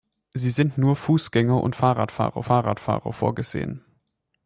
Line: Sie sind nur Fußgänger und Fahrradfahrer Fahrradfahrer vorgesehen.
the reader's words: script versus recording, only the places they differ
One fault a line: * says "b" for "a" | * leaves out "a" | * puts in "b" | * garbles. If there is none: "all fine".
all fine